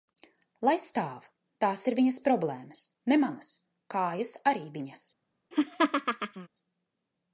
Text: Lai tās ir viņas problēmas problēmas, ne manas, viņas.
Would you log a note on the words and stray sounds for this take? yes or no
yes